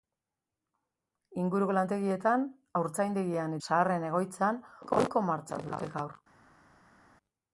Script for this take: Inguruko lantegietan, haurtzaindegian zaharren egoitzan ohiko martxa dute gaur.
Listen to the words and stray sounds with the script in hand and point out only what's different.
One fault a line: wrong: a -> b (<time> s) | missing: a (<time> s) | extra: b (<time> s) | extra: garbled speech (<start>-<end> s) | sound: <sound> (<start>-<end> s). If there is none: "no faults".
no faults